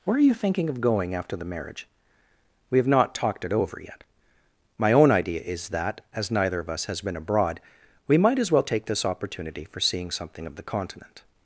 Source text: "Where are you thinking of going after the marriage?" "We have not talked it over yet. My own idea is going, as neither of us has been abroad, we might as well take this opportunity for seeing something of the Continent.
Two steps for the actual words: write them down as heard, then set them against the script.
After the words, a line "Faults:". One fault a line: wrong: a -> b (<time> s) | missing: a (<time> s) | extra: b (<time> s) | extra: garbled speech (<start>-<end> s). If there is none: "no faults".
"Where are you thinking of going after the marriage?" "We have not talked it over yet. My own idea is that, as neither of us has been abroad, we might as well take this opportunity for seeing something of the Continent.
Faults:
wrong: going -> that (5.7 s)